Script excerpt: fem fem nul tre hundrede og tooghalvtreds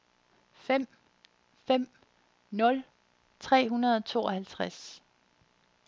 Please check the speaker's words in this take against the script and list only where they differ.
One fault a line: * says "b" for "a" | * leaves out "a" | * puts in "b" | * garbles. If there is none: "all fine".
all fine